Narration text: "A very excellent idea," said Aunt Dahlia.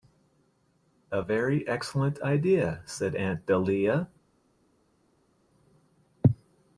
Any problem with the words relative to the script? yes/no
no